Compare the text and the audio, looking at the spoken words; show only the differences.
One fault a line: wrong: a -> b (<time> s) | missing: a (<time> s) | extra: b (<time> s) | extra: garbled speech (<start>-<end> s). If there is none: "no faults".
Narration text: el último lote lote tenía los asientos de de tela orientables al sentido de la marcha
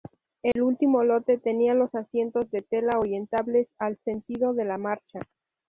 missing: lote (1.4 s)
missing: de (2.6 s)